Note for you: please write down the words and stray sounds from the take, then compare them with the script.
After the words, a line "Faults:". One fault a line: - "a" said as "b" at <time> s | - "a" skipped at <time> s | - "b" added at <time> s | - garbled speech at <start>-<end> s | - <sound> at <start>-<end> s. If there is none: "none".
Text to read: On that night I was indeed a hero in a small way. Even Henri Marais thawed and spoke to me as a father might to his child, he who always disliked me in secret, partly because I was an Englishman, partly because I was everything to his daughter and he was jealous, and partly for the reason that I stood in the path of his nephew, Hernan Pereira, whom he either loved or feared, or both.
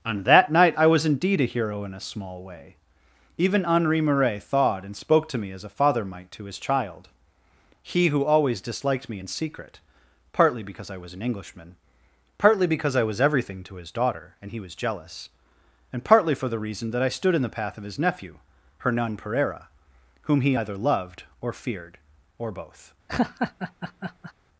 On that night I was indeed a hero in a small way. Even Henri Marais thawed and spoke to me as a father might to his child, he who always disliked me in secret, partly because I was an Englishman, partly because I was everything to his daughter and he was jealous, and partly for the reason that I stood in the path of his nephew, Hernan Pereira, whom he either loved or feared, or both.
Faults:
- laugh at 23.1-24.3 s